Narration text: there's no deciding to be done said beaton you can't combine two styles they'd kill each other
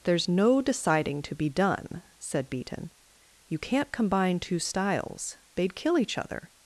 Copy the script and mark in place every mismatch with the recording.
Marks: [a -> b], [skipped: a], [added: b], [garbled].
there's no deciding to be done said beaton you can't combine two styles they'd kill each other